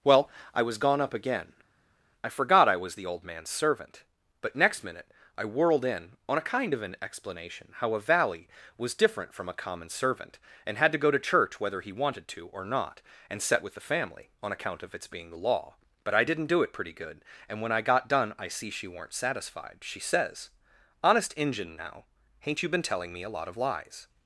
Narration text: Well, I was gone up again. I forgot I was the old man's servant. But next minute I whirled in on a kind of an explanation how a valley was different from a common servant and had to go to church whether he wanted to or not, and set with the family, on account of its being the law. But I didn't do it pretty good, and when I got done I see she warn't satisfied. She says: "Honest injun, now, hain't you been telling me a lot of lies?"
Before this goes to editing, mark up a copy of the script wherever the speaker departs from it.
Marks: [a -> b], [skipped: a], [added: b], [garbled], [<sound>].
Well, I was gone up again. I forgot I was the old man's servant. But next minute I whirled in on a kind of an explanation how a valley was different from a common servant and had to go to church whether he wanted to or not, and set with the family, on account of its being the law. But I didn't do it pretty good, and when I got done I see she [warn't -> weren't] satisfied. She says: "Honest injun, now, hain't you been telling me a lot of lies?"